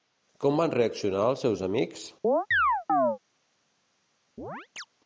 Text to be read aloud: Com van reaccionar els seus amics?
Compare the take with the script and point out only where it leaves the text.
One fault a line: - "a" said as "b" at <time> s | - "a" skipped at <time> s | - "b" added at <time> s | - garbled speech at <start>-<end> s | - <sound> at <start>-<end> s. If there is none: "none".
- chirp at 2.2-3.2 s
- chirp at 4.4-4.9 s